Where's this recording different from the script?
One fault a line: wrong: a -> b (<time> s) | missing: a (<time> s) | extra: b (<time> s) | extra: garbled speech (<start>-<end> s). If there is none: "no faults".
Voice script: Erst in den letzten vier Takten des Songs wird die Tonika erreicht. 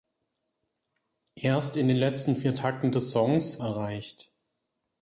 missing: wird die Tonika (3.6 s)